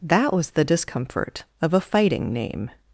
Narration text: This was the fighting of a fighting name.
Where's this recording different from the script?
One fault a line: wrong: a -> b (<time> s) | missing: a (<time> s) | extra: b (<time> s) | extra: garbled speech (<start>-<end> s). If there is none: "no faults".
wrong: This -> That (0.0 s)
wrong: fighting -> discomfort (0.6 s)